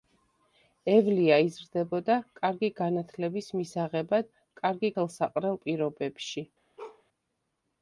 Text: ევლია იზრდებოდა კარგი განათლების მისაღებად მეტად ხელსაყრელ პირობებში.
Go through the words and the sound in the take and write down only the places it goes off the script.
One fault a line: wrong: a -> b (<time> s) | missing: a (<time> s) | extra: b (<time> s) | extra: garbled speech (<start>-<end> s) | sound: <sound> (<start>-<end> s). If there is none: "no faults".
wrong: მეტად -> კარგი (4.6 s)
sound: bark (6.8-7.0 s)